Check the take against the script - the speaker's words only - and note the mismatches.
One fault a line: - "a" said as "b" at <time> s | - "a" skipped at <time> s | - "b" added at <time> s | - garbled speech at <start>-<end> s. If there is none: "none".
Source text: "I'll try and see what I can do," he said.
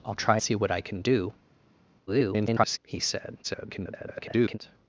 - "and" skipped at 0.4 s
- garbled speech at 2.1-2.8 s
- garbled speech at 3.4-4.6 s